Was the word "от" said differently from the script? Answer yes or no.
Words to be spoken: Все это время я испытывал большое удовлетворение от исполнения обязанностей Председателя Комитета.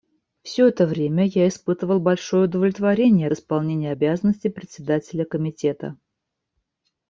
yes